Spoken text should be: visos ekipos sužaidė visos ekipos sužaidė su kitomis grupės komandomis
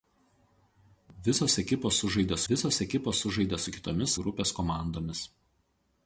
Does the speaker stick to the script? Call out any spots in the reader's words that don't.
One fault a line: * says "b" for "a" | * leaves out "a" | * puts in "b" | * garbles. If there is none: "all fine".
all fine